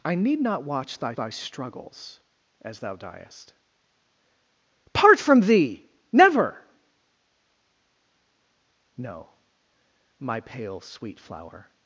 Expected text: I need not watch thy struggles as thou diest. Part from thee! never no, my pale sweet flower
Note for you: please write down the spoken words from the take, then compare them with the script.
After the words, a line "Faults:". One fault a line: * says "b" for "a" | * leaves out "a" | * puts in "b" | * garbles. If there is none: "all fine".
I need not watch thy thy struggles as thou diest. Part from thee! never no, my pale sweet flower
Faults:
* puts in "thy"